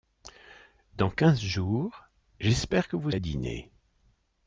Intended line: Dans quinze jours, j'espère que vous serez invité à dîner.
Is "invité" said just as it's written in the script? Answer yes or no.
no